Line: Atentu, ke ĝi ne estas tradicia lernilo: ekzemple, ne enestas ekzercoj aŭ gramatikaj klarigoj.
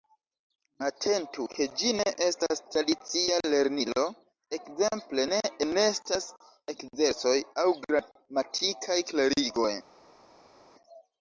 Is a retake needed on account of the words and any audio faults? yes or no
no